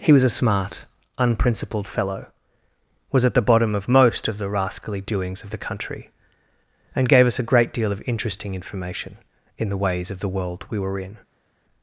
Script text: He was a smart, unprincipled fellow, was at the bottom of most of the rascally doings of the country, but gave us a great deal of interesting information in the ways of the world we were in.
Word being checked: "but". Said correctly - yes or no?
no